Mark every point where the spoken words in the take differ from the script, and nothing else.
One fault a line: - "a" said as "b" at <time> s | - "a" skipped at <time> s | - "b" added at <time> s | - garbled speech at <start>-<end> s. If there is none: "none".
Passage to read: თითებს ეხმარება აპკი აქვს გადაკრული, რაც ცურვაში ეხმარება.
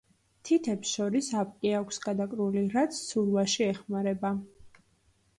- "ეხმარება" said as "შორის" at 1.0 s